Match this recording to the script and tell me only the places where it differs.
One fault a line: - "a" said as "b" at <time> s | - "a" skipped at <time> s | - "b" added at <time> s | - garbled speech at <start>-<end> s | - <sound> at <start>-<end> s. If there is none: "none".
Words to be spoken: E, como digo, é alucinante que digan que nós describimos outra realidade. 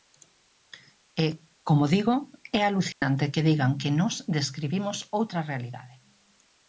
- dropout at 2.9-3.0 s